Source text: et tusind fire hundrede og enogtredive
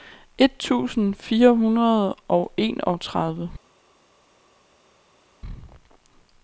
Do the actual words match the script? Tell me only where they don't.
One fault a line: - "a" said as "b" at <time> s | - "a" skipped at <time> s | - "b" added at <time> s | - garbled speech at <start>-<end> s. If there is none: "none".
none